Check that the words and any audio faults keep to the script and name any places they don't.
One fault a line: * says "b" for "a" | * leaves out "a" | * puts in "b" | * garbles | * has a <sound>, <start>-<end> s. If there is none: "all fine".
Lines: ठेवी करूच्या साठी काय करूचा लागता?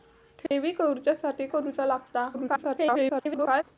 * has a dropout, 0.5-0.5 s
* leaves out "काय"
* garbles